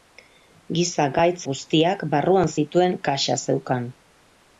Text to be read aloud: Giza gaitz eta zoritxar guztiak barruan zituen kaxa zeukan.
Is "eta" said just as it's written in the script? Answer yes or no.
no